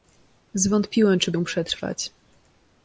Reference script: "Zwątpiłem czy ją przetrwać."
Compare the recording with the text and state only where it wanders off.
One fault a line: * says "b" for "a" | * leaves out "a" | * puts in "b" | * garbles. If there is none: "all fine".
all fine